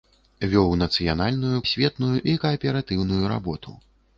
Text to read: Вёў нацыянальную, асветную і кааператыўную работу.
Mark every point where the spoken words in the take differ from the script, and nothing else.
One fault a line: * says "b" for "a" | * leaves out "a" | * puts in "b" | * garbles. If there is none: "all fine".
all fine